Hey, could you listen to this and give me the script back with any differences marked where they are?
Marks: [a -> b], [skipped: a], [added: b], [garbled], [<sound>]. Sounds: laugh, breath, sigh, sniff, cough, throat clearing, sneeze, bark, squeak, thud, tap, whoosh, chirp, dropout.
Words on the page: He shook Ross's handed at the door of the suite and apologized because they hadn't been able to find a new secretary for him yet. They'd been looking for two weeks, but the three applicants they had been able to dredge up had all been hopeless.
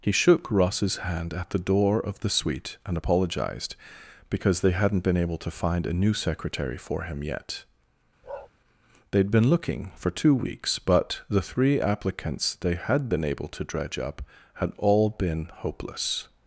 He shook Ross's [handed -> hand] at the door of the suite and apologized because they hadn't been able to find a new secretary for him yet. [bark] They'd been looking for two weeks, but the three applicants they had been able to dredge up had all been hopeless.